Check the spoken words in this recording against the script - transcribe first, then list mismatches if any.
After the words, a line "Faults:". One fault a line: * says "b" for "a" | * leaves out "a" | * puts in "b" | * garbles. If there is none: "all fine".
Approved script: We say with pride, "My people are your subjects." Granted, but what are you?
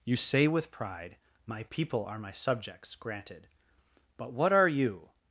You say with pride, "My people are my subjects." Granted, but what are you?
Faults:
* says "You" for "We"
* says "my" for "your"